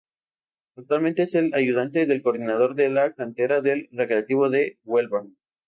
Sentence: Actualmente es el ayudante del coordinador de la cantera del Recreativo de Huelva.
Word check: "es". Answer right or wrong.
right